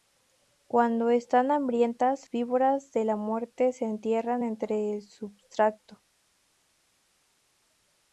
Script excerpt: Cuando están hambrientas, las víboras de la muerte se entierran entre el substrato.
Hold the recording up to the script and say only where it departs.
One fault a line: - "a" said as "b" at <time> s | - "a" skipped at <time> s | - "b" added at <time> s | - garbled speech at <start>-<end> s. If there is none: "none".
- "las" skipped at 2.3 s